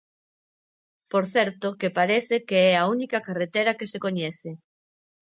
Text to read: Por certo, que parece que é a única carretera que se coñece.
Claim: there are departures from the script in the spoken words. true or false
false